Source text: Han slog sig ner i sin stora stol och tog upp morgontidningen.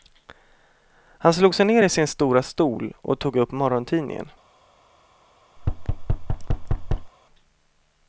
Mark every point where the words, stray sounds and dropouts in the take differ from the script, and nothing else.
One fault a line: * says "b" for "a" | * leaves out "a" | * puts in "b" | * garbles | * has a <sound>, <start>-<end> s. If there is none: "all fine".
* has a thud, 5.6-7.1 s